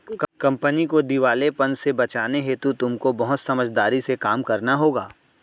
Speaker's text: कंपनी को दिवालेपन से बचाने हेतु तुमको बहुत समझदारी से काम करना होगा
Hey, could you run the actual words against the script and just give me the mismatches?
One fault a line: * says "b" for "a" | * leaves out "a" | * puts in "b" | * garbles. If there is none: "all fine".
all fine